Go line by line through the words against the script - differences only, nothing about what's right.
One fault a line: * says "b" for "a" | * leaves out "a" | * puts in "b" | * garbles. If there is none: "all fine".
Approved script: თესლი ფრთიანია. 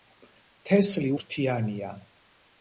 all fine